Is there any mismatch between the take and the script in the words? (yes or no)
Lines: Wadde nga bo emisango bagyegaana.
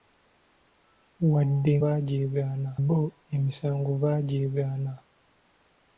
yes